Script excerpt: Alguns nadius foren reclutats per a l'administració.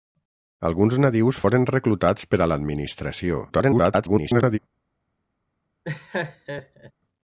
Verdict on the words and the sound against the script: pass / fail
fail